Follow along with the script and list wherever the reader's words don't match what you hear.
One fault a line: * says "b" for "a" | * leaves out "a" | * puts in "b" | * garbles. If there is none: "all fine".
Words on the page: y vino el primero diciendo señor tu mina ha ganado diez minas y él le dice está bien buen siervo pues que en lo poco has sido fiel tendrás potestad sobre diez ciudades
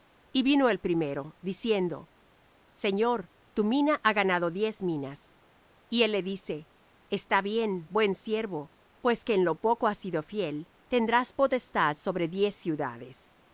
all fine